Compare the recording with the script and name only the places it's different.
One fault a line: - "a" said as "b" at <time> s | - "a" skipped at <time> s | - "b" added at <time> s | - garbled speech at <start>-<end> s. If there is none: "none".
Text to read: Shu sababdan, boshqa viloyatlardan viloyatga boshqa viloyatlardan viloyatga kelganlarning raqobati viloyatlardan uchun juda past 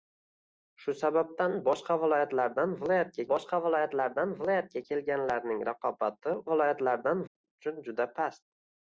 none